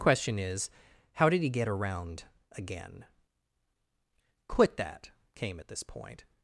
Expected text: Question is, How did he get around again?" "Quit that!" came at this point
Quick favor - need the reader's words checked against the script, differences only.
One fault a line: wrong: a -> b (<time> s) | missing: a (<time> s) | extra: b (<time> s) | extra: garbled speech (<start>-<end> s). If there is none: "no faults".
no faults